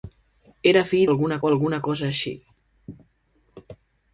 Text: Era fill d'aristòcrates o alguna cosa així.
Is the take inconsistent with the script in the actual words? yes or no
yes